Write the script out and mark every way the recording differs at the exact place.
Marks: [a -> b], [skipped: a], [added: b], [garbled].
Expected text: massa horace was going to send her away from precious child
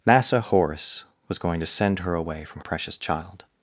massa horace was going to send her away from precious child